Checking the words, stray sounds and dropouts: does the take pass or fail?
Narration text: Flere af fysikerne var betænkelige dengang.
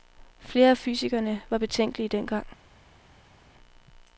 pass